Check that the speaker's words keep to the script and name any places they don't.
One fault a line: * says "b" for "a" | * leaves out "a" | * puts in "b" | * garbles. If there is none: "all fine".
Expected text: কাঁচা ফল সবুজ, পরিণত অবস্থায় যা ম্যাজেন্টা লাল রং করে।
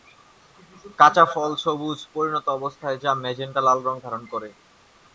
* puts in "ধারণ"